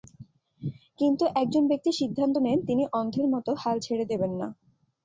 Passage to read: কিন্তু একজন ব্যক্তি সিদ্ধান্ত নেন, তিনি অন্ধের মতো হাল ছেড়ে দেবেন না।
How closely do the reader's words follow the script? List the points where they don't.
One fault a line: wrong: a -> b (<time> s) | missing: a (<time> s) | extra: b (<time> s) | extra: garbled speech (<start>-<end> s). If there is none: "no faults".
no faults